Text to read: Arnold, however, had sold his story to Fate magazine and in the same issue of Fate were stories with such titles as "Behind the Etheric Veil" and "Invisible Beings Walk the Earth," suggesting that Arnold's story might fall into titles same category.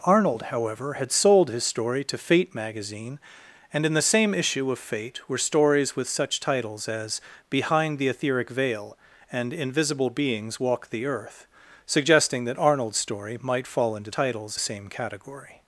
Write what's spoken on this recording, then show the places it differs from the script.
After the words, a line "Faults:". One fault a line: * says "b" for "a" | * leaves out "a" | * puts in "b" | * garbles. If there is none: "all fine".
Arnold, however, had sold his story to Fate magazine and in the same issue of Fate were stories with such titles as "Behind the Etheric Veil" and "Invisible Beings Walk the Earth," suggesting that Arnold's story might fall into titles same category.
Faults:
all fine